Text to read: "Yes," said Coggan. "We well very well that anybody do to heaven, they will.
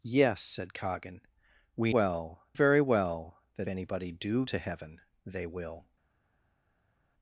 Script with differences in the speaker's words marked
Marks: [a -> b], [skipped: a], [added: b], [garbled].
"Yes," said Coggan. "We well very well that anybody do to heaven, they will.